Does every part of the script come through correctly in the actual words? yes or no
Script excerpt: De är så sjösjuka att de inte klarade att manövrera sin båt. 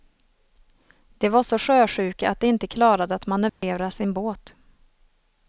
no